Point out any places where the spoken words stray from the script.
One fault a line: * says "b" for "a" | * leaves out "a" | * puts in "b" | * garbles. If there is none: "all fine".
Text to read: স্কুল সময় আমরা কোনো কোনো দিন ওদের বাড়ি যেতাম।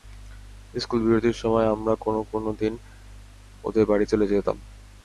* puts in "বিরতির"
* puts in "চলে"